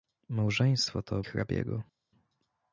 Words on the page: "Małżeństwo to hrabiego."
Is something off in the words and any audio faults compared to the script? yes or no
no